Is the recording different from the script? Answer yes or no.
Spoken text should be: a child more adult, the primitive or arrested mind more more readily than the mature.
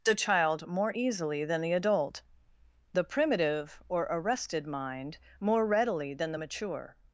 yes